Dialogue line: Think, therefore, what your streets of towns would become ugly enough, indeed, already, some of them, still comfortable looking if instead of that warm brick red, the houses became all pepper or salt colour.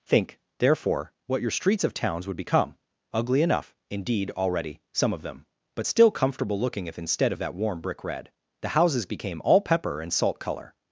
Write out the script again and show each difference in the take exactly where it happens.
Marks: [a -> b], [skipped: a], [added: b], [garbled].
Think, therefore, what your streets of towns would become ugly enough, indeed, already, some of them, [added: but] still comfortable looking if instead of that warm brick red, the houses became all pepper [or -> and] salt colour.